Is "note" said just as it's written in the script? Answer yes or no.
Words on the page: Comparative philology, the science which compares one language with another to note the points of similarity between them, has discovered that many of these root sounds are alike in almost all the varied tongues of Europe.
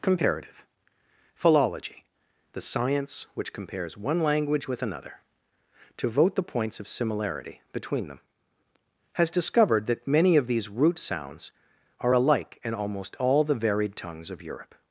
no